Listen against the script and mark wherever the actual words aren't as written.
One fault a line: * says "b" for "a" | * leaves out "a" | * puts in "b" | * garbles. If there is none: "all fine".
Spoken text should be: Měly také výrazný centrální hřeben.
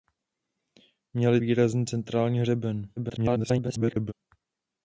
* leaves out "také"
* garbles